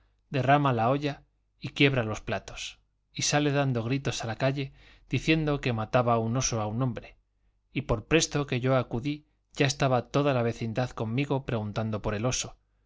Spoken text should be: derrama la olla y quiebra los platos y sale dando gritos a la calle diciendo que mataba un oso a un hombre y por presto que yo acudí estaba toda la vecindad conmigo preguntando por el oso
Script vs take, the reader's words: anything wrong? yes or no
yes